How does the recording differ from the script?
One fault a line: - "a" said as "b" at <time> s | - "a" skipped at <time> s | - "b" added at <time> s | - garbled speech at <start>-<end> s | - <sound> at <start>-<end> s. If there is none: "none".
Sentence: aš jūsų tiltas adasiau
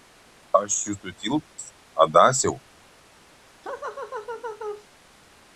- dropout at 1.5-1.6 s
- laugh at 3.6-4.9 s